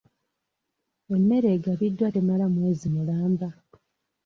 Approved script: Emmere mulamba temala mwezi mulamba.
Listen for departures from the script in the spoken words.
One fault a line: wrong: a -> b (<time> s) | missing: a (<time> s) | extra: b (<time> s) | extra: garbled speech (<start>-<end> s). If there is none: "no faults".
wrong: mulamba -> egabiddwa (1.6 s)